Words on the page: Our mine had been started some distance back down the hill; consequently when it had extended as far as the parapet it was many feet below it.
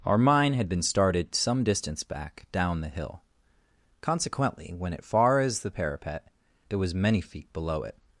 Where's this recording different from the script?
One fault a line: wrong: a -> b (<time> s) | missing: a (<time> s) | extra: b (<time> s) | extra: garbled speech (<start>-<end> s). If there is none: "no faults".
missing: had extended as (5.0 s)